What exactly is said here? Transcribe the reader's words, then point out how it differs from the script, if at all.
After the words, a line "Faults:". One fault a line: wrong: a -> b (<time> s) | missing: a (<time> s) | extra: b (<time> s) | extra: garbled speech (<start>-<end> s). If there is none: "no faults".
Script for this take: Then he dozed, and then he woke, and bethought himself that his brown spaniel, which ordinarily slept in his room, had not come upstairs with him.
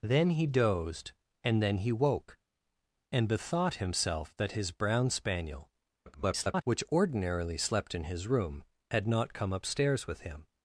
Then he dozed, and then he woke, and bethought himself that his brown spaniel, [garbled] which ordinarily slept in his room, had not come upstairs with him.
Faults:
extra: garbled speech (6.1-6.6 s)